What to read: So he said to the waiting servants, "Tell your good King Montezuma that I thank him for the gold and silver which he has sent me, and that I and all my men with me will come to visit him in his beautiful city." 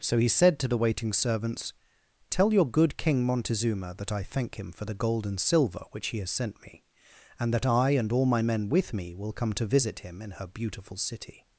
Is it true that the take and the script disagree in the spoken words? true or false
true